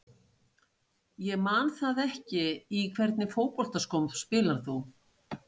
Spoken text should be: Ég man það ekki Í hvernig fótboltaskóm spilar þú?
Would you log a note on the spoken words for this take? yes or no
no